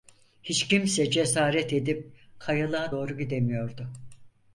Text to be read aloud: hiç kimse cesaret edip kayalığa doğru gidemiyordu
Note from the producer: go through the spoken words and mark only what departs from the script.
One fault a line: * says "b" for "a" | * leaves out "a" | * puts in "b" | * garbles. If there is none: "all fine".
all fine